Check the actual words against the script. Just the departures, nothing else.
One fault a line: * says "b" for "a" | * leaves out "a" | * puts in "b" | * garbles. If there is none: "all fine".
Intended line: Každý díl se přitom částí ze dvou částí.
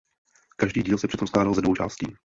* says "skládal" for "částí"